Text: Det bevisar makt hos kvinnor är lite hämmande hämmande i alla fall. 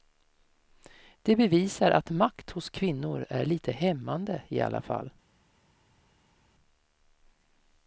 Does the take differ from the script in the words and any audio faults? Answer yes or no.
yes